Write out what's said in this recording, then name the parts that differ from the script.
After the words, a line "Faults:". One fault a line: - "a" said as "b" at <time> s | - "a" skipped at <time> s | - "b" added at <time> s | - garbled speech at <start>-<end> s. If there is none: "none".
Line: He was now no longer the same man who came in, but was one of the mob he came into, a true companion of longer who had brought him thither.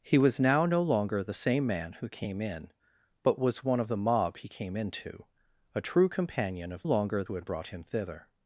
He was now no longer the same man who came in, but was one of the mob he came into, a true companion of longer who had brought him thither.
Faults:
none